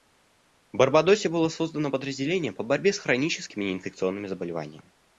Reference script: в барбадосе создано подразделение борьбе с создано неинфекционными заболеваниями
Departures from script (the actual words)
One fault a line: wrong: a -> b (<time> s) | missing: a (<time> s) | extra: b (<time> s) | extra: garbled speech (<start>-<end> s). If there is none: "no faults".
extra: было (1.3 s)
extra: по (2.5 s)
wrong: создано -> хроническими (3.0 s)